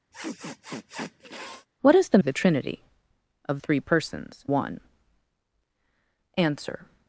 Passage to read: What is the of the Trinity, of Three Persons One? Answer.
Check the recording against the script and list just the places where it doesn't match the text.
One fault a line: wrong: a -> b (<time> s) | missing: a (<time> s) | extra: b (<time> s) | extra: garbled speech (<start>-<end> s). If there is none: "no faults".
no faults